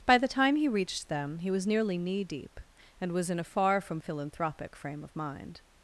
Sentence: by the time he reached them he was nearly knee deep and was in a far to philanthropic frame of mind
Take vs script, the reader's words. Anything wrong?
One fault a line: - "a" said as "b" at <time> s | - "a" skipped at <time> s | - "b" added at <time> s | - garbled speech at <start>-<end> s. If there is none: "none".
- "to" said as "from" at 3.8 s